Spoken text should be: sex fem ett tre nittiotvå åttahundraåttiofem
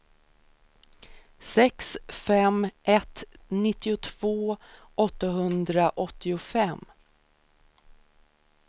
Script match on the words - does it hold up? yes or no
no